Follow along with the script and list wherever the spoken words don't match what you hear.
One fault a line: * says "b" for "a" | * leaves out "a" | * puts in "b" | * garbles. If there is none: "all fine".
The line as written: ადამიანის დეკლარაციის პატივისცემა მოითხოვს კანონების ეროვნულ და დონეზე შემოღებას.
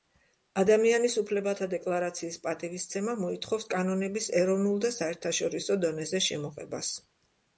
* puts in "უფლებათა"
* puts in "საერთაშორისო"